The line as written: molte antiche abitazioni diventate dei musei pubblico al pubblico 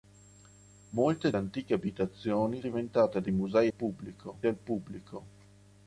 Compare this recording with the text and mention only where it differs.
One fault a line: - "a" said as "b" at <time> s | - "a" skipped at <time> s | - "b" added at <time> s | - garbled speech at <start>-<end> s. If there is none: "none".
none